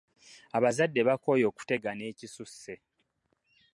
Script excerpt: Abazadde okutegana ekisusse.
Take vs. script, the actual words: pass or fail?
fail